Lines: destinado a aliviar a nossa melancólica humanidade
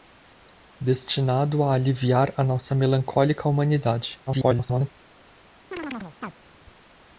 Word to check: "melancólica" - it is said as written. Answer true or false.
true